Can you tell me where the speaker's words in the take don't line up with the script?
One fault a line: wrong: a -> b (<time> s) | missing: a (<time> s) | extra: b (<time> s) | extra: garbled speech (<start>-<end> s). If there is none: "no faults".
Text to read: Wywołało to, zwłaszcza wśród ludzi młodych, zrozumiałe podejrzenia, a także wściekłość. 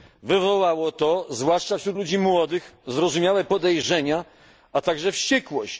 no faults